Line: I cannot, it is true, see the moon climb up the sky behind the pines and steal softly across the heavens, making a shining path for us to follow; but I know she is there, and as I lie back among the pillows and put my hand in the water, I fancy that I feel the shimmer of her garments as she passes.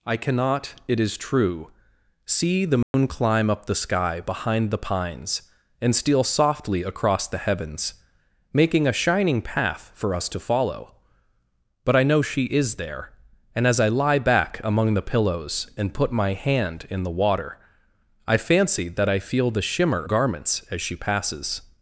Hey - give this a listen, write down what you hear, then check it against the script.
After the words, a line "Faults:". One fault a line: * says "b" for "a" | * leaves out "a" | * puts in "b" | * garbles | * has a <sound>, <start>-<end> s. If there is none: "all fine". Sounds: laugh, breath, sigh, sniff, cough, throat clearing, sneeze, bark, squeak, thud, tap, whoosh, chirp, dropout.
I cannot, it is true, see the moon climb up the sky behind the pines and steal softly across the heavens, making a shining path for us to follow; but I know she is there, and as I lie back among the pillows and put my hand in the water, I fancy that I feel the shimmer garments as she passes.
Faults:
* has a dropout, 2.8-2.9 s
* leaves out "of her"